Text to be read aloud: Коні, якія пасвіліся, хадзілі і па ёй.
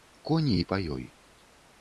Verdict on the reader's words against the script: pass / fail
fail